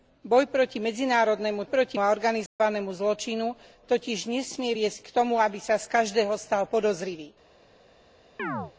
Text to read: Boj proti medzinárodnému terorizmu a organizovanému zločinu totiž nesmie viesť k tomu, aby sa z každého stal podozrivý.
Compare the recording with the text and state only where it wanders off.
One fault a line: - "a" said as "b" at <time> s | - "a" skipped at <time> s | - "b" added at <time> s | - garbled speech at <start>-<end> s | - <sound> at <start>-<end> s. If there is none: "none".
- "terorizmu" said as "proti" at 1.6 s
- dropout at 2.5-2.6 s
- chirp at 8.4-8.7 s